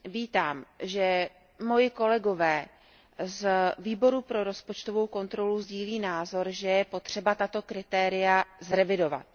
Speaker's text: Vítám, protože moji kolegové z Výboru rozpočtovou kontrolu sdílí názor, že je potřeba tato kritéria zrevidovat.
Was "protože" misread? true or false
true